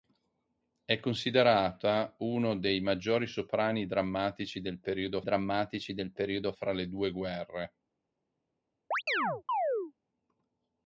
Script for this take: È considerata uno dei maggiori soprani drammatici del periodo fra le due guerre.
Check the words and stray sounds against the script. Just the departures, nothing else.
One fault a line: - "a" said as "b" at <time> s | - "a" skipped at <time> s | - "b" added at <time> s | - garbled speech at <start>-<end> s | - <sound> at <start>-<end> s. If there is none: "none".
- "drammatici del periodo" added at 5.2 s
- chirp at 8.9-9.9 s